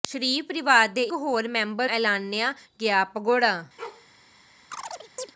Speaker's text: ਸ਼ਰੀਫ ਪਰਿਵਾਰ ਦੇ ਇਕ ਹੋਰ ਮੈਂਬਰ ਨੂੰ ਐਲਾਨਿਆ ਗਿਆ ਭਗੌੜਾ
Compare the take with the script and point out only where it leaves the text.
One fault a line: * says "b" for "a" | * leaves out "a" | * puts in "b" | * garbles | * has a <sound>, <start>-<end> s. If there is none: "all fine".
* leaves out "ਇਕ"
* leaves out "ਨੂੰ"
* has a bark, 3.8-4.1 s
* has a chirp, 4.7-5.3 s